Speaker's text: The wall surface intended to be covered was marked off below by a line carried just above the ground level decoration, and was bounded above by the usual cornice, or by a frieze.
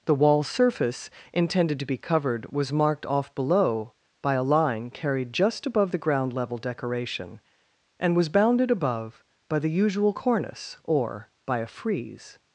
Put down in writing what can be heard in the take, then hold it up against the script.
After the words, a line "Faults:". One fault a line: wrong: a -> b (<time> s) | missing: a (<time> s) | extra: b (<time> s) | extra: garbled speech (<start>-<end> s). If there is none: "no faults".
The wall surface intended to be covered was marked off below by a line carried just above the ground level decoration, and was bounded above by the usual cornice, or by a frieze.
Faults:
no faults